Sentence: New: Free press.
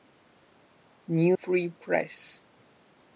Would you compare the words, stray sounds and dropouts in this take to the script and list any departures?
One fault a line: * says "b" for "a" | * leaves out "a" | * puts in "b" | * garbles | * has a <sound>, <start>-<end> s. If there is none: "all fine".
all fine